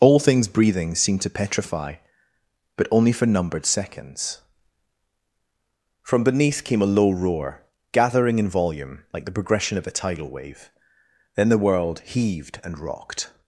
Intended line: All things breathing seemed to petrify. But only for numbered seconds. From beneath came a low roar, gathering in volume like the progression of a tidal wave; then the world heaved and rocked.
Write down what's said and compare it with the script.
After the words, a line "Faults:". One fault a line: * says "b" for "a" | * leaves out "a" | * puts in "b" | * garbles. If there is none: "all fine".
All things breathing seemed to petrify. But only for numbered seconds. From beneath came a low roar, gathering in volume like the progression of a tidal wave; then the world heaved and rocked.
Faults:
all fine